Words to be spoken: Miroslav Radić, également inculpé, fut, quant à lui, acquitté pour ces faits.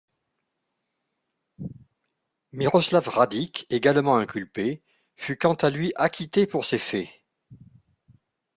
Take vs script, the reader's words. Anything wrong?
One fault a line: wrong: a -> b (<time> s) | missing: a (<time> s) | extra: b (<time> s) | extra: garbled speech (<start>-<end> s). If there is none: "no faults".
no faults